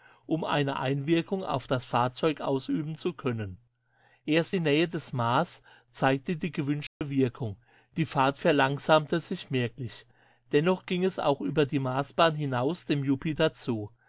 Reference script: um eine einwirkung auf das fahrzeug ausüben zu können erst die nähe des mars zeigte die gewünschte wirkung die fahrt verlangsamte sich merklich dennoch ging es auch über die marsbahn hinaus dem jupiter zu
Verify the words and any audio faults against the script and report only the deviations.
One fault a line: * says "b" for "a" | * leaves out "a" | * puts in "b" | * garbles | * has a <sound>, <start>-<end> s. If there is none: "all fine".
* has a dropout, 6.9-7.0 s